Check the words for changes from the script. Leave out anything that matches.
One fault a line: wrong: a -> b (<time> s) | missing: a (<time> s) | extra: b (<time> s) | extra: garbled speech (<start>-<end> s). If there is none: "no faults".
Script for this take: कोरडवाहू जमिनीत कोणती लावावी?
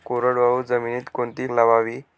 no faults